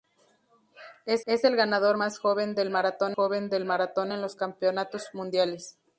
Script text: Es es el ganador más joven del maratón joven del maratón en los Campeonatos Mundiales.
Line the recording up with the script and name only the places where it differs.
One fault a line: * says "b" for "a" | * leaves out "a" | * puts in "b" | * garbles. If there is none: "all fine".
all fine